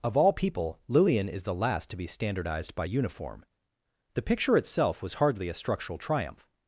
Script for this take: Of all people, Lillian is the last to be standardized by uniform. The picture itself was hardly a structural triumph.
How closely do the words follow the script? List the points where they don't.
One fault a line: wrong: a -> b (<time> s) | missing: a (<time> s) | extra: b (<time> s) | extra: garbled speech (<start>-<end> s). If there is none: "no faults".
no faults